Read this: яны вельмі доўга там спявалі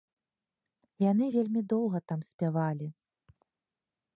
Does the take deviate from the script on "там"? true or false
false